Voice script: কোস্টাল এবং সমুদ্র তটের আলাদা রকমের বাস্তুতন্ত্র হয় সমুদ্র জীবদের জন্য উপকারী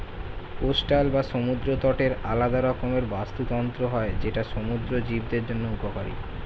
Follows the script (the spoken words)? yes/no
no